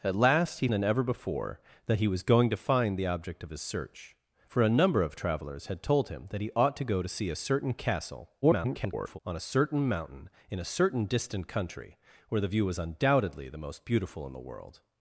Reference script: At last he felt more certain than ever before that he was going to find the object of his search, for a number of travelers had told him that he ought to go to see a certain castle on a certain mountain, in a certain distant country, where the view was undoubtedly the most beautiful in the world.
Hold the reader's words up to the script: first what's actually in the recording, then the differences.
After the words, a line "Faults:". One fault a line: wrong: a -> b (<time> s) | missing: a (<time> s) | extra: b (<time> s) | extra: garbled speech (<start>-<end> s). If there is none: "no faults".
At last he than ever before that he was going to find the object of his search, for a number of travelers had told him that he ought to go to see a certain castle [garbled] on a certain mountain, in a certain distant country, where the view was undoubtedly the most beautiful in the world.
Faults:
missing: felt more certain (0.7 s)
extra: garbled speech (8.4-9.2 s)